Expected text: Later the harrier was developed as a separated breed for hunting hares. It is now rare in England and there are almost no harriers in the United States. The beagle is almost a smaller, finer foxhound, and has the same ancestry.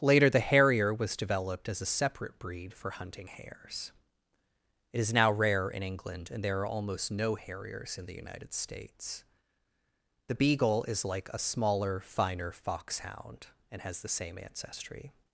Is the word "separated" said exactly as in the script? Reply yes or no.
no